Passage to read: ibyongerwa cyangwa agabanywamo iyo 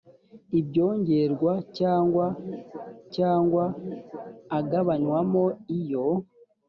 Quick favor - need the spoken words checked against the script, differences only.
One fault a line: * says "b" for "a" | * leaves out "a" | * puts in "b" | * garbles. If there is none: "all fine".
* puts in "cyangwa"